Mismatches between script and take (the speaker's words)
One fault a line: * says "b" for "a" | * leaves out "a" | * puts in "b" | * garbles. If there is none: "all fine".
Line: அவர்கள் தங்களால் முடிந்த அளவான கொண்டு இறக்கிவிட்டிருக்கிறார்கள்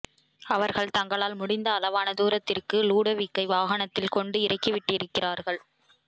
* puts in "தூரத்திற்கு லுடோவிக்கை வாகனத்தில்"